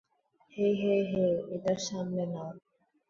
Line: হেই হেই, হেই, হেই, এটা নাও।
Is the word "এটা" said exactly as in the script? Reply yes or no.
no